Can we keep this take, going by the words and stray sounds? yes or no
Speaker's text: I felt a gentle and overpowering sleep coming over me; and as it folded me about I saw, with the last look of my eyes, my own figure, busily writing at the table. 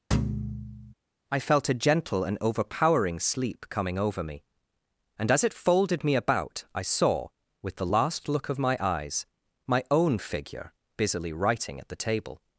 no